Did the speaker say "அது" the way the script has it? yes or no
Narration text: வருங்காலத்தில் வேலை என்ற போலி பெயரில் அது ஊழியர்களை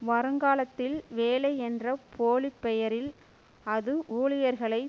yes